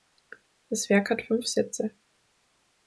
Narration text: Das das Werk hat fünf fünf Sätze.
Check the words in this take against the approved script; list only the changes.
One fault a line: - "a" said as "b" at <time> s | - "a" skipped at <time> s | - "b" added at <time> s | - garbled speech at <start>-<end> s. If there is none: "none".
- "das" skipped at 0.9 s
- "fünf" skipped at 1.4 s